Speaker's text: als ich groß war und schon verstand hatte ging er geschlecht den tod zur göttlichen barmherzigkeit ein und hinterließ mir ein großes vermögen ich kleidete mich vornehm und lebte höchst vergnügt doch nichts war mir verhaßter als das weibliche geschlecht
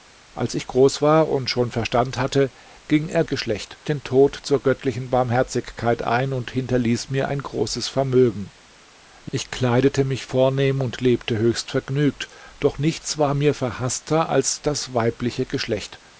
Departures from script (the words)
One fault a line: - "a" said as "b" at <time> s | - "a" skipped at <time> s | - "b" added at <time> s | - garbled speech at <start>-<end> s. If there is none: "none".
none